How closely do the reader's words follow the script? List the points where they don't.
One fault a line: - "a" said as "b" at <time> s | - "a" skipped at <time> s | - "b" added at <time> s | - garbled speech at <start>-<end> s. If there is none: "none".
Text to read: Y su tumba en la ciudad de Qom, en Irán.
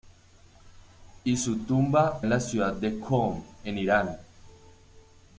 none